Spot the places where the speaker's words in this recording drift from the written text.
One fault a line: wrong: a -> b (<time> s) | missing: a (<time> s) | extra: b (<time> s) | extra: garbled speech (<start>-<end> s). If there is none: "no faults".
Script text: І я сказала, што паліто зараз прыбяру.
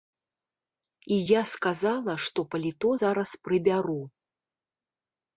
no faults